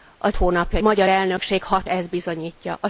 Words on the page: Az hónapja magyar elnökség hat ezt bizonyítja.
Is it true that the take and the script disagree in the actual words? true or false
false